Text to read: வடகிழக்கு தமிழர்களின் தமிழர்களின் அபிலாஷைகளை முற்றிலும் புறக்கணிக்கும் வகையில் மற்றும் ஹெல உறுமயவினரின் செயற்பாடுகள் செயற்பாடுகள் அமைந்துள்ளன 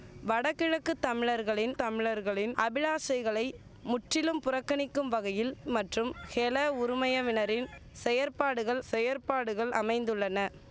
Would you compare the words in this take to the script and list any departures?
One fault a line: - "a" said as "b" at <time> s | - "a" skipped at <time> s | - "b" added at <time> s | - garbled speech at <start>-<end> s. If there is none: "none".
none